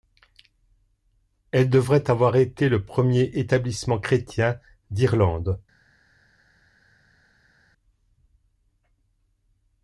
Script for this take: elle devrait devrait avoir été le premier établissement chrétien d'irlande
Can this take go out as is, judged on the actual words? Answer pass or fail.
fail